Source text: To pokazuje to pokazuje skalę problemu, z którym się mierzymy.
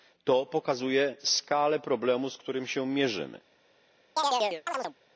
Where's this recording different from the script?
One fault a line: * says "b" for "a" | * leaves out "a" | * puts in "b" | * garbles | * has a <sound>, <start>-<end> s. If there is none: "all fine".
* leaves out "to pokazuje"
* has a chirp, 4.2-4.9 s